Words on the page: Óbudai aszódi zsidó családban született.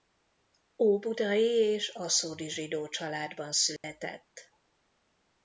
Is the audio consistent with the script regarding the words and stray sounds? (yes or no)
no